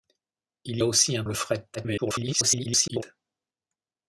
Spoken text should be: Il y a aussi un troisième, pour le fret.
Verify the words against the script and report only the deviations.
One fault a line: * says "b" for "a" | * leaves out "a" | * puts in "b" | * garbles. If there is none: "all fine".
* leaves out "y"
* leaves out "troisième pour"
* garbles